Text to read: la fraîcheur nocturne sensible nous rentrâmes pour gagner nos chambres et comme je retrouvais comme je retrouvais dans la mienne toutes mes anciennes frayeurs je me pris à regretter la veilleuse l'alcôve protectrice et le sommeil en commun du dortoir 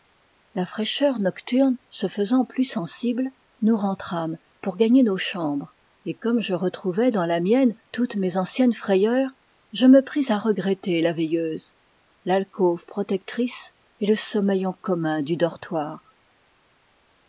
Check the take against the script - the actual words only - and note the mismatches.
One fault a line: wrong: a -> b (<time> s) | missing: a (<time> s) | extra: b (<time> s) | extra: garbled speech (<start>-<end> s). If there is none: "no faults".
extra: se faisant plus (1.9 s)
missing: comme je retrouvais (7.1 s)